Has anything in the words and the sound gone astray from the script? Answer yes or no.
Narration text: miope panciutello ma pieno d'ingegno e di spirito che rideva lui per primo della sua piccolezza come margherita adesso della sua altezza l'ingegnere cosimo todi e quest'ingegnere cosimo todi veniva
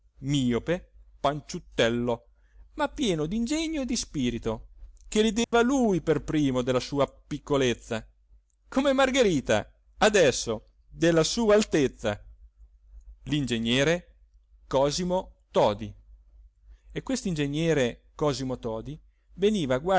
yes